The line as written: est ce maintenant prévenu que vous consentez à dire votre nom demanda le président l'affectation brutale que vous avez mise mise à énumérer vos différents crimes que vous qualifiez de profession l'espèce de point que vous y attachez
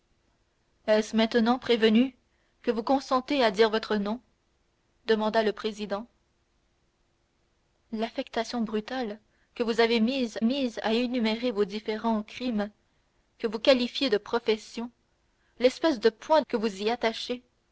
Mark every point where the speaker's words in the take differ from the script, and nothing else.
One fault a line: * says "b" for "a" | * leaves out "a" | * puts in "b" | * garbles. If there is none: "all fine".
all fine